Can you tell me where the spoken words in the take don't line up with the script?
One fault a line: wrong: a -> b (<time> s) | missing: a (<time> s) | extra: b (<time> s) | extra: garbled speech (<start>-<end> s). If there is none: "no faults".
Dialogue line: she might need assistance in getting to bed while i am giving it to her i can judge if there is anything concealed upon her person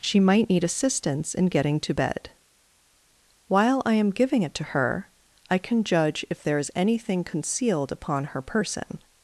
no faults